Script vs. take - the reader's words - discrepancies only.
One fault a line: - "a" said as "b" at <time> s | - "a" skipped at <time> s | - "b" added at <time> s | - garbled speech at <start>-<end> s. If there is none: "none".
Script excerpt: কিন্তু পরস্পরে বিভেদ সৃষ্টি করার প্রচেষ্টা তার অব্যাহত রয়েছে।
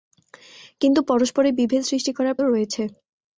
- "প্রচেষ্টা তার অব্যাহত" skipped at 2.4 s